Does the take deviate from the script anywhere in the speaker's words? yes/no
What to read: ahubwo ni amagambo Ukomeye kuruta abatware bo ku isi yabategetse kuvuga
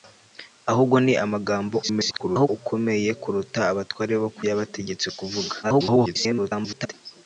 yes